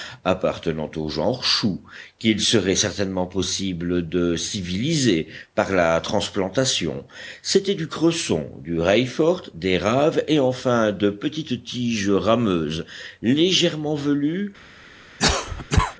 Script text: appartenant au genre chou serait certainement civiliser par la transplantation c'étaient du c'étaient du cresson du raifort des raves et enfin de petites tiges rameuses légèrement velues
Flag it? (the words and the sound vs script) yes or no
yes